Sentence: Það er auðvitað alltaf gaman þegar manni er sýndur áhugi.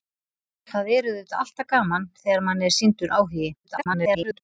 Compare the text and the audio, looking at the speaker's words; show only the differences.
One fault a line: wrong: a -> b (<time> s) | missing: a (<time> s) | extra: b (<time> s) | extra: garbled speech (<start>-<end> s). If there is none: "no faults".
extra: garbled speech (3.6-4.4 s)